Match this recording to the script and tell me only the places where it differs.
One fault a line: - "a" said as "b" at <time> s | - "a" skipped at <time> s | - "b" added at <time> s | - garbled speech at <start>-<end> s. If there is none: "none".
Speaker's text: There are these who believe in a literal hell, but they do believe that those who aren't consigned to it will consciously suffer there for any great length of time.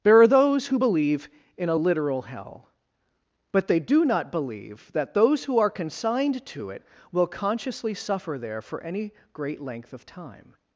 - "these" said as "those" at 0.3 s
- "not" added at 4.0 s
- "aren't" said as "are" at 5.6 s